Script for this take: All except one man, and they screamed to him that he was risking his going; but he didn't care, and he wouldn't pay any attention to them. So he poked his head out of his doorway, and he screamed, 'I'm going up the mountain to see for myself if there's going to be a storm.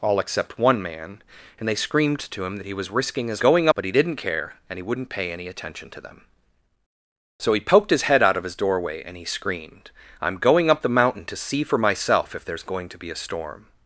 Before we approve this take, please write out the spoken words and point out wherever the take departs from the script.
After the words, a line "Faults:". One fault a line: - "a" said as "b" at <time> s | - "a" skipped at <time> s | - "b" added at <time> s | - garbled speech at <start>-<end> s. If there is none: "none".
All except one man, and they screamed to him that he was risking his going; but he didn't care, and he wouldn't pay any attention to them. So he poked his head out of his doorway, and he screamed, 'I'm going up the mountain to see for myself if there's going to be a storm.
Faults:
none